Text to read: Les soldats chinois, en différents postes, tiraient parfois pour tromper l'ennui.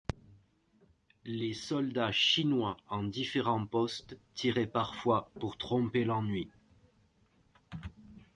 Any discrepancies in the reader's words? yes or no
no